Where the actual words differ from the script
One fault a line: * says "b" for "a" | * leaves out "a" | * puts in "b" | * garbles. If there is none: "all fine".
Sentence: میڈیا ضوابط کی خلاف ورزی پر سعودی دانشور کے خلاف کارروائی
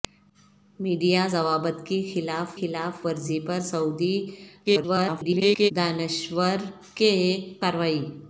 * puts in "خلاف"
* garbles
* leaves out "خلاف"